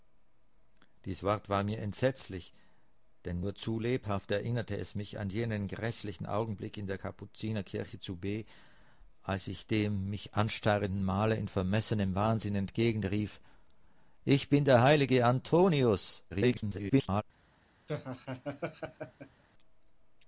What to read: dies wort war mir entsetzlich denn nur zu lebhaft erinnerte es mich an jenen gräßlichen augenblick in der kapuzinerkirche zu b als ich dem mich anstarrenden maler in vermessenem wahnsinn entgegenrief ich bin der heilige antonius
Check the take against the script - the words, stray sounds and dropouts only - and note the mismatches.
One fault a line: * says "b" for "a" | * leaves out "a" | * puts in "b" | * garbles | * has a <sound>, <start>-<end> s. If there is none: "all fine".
* garbles
* has a laugh, 17.9-19.4 s